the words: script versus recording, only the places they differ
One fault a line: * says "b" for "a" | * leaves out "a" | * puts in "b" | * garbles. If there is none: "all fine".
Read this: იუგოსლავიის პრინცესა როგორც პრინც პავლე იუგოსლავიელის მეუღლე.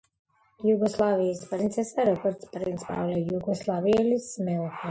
all fine